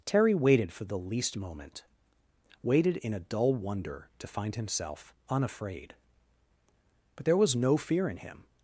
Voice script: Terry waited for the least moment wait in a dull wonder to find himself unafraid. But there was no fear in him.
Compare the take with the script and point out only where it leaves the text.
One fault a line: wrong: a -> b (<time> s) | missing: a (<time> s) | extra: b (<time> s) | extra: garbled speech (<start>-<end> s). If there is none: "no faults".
wrong: wait -> waited (2.6 s)